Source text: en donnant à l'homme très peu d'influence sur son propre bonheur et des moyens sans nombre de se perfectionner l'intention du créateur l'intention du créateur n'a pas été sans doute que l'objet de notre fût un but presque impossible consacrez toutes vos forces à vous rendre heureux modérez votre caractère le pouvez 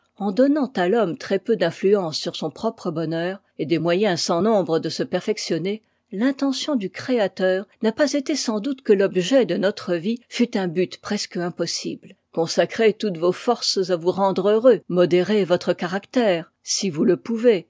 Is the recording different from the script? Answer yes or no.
yes